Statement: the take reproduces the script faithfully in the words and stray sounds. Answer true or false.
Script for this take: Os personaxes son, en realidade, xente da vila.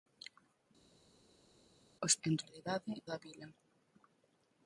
false